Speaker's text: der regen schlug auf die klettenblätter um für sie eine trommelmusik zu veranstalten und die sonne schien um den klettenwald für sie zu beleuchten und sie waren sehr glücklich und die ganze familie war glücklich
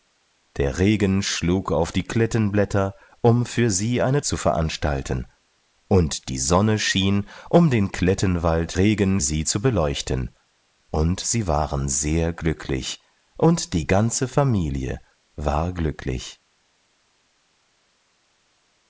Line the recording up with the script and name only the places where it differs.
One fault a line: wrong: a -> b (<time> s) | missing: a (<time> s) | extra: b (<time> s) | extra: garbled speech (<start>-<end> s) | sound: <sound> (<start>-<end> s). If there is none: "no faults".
missing: trommelmusik (4.2 s)
wrong: für -> regen (8.8 s)